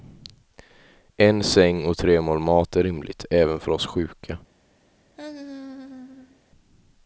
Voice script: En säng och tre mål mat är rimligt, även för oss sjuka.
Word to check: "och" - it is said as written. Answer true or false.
true